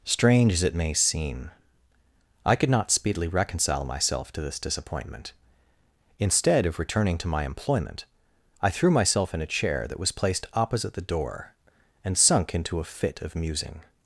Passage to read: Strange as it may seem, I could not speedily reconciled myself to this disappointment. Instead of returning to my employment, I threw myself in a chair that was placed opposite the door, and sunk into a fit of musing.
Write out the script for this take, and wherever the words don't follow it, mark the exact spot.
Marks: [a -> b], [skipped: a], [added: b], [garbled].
Strange as it may seem, I could not speedily [reconciled -> reconcile] myself to this disappointment. Instead of returning to my employment, I threw myself in a chair that was placed opposite the door, and sunk into a fit of musing.